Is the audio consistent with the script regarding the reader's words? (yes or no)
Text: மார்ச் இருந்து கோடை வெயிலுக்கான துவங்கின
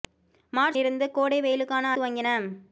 yes